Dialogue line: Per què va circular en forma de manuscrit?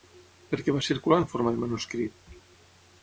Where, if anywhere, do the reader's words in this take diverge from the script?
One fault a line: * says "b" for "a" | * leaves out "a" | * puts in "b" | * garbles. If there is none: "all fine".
all fine